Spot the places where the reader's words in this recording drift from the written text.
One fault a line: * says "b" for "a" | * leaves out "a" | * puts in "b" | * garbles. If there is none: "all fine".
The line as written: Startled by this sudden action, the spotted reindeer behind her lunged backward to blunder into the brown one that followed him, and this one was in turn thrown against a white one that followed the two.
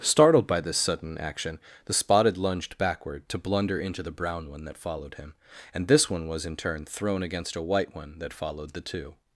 * leaves out "reindeer behind her"